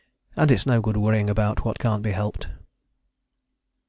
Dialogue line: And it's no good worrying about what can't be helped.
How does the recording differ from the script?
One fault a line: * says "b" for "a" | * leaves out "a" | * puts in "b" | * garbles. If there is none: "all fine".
all fine